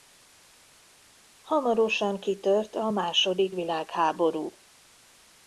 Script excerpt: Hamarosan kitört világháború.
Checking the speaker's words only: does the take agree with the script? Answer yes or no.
no